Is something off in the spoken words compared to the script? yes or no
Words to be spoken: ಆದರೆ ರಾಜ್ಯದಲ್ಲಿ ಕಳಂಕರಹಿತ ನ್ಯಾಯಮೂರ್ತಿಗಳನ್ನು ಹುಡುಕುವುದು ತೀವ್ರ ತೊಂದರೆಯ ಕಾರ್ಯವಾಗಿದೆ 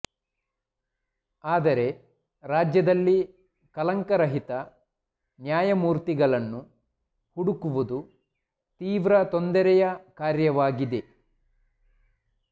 no